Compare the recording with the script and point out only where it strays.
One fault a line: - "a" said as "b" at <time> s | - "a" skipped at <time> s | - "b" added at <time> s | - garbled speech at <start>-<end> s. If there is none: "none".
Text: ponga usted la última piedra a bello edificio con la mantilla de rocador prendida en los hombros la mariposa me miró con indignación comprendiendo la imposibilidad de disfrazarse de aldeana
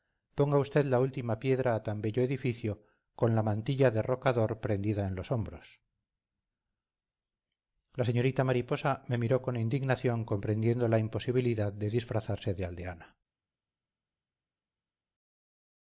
- "tan" added at 1.8 s
- "señorita" added at 8.1 s